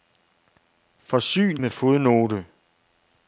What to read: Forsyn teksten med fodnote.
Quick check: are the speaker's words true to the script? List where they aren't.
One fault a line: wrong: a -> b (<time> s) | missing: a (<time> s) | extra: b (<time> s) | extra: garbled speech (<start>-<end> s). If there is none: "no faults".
missing: teksten (1.6 s)